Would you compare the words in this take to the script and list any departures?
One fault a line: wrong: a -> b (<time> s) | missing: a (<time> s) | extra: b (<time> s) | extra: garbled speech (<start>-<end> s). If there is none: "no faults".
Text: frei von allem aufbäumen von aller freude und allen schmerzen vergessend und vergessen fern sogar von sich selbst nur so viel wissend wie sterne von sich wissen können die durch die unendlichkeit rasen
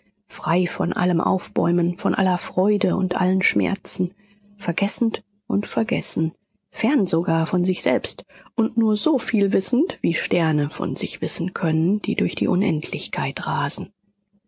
extra: und (8.5 s)